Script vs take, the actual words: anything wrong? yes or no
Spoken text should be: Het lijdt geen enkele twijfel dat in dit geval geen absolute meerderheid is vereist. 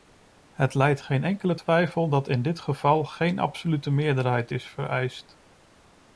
no